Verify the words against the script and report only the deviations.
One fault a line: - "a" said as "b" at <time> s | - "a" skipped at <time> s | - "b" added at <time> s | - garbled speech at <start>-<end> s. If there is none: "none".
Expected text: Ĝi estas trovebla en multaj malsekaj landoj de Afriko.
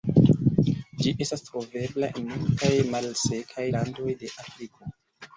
none